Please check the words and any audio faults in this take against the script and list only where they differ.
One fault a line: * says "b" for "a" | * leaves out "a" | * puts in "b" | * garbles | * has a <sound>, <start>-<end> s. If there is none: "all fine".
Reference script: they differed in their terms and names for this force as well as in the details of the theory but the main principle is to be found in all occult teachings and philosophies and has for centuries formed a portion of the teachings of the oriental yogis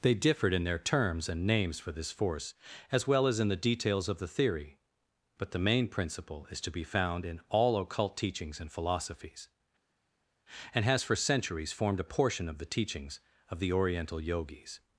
all fine